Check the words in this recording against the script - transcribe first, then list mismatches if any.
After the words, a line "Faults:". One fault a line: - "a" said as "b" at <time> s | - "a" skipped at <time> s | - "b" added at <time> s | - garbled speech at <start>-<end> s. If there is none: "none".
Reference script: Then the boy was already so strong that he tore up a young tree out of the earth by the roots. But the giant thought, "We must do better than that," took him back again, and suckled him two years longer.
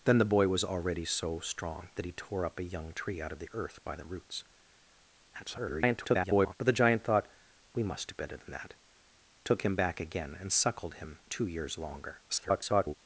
Then the boy was already so strong that he tore up a young tree out of the earth by the roots. [garbled] But the giant thought, "We must do better than that," took him back again, and suckled him two years longer. [garbled]
Faults:
- garbled speech at 5.3-6.6 s
- garbled speech at 12.3-12.9 s